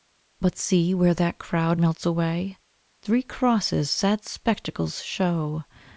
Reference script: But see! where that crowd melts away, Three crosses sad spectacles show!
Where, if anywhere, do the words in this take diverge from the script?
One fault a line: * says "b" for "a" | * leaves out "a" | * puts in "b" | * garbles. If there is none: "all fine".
all fine